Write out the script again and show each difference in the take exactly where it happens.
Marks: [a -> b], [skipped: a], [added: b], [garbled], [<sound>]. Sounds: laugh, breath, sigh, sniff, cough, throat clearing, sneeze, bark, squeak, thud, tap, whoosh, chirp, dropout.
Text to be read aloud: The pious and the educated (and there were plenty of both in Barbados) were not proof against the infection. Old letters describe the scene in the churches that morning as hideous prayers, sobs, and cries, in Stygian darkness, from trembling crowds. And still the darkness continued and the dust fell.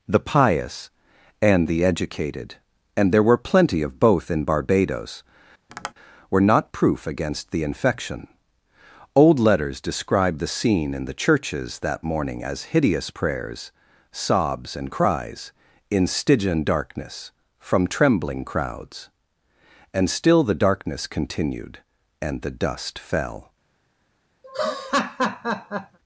The pious and the educated (and there were plenty of both in Barbados) [tap] were not proof against the infection. Old letters describe the scene in the churches that morning as hideous prayers, sobs, and cries, in Stygian darkness, from trembling crowds. And still the darkness continued and the dust fell. [laugh]